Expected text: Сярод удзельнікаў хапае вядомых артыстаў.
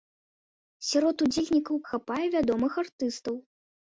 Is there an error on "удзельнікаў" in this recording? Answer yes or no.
no